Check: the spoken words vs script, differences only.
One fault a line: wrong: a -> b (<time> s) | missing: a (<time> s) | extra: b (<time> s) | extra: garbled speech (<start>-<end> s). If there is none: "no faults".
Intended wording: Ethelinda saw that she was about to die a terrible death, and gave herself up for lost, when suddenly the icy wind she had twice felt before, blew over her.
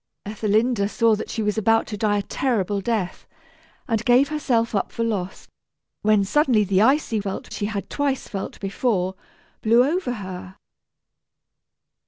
wrong: wind -> felt (7.2 s)